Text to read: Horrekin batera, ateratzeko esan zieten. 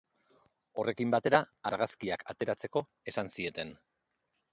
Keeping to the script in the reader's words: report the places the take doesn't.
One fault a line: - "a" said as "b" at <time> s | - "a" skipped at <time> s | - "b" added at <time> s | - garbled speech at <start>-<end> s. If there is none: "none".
- "argazkiak" added at 1.7 s